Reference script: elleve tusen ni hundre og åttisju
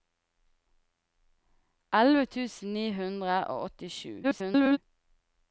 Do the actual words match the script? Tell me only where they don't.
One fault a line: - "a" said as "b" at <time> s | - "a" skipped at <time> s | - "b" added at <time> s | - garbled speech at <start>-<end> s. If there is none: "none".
- garbled speech at 4.2-4.8 s